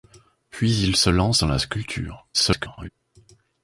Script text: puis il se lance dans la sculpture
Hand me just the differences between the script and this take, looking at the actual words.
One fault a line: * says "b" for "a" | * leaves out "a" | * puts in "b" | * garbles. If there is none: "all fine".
* garbles